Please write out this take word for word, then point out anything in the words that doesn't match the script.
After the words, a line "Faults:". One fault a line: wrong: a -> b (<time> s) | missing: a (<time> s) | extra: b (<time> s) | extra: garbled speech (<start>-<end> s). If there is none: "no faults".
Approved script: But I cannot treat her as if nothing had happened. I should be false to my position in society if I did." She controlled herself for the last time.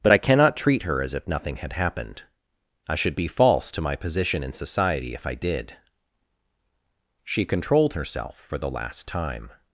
But I cannot treat her as if nothing had happened. I should be false to my position in society if I did." She controlled herself for the last time.
Faults:
no faults